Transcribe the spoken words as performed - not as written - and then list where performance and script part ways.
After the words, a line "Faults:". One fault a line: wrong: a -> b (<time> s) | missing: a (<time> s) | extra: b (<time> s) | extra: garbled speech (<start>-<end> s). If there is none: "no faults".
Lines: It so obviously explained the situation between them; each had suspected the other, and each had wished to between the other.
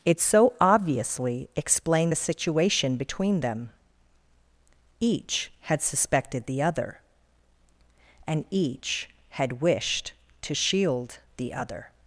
It so obviously explained the situation between them; each had suspected the other, and each had wished to shield the other.
Faults:
wrong: between -> shield (10.5 s)